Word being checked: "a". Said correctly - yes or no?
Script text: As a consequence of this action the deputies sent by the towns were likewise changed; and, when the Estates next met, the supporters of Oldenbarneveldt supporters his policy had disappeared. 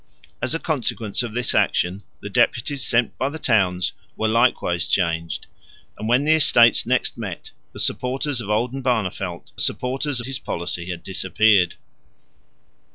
yes